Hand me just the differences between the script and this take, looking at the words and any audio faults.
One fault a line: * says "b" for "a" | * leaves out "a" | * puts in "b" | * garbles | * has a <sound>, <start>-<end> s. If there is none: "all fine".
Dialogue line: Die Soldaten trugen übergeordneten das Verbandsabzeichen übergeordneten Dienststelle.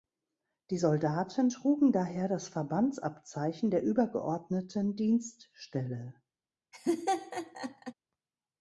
* says "daher" for "übergeordneten"
* puts in "der"
* has a laugh, 6.7-7.9 s